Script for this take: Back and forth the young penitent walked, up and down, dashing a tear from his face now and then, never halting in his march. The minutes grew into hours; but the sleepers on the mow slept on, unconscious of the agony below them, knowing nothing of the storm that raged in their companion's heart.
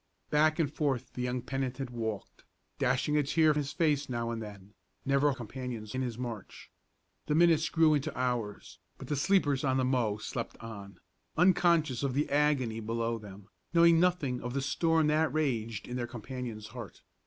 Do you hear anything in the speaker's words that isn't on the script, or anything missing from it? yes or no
yes